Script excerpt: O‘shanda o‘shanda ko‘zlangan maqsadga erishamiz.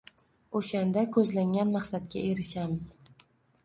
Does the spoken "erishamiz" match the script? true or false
true